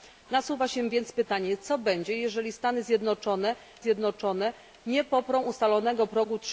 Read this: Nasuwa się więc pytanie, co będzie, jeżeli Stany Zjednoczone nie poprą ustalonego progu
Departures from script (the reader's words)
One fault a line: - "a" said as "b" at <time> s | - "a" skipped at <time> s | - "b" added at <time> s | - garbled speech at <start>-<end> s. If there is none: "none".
- "Zjednoczone" added at 3.8 s